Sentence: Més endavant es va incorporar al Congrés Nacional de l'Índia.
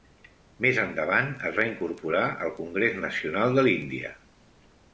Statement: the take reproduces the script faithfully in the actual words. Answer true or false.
true